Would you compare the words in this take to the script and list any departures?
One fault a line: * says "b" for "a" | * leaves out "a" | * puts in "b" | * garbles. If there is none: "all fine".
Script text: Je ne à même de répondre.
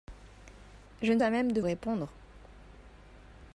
all fine